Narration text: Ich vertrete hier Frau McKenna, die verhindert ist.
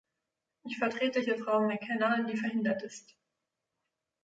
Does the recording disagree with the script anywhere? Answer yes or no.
no